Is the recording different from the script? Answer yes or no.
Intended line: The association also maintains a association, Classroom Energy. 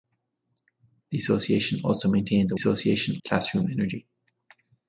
no